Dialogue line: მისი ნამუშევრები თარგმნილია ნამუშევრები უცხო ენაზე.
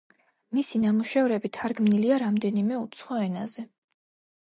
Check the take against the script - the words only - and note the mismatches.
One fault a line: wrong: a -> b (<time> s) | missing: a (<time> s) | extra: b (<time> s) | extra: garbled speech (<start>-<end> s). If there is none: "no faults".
wrong: ნამუშევრები -> რამდენიმე (2.3 s)